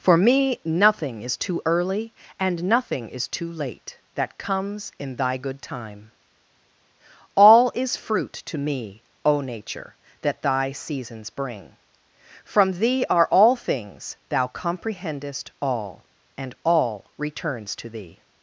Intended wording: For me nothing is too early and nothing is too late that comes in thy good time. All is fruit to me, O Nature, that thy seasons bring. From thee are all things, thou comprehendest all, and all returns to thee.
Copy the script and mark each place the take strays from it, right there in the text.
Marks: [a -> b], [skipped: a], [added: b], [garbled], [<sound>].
For me nothing is too early and nothing is too late that comes in thy good time. All is fruit to me, O Nature, that thy seasons bring. From thee are all things, thou comprehendest all, and all returns to thee.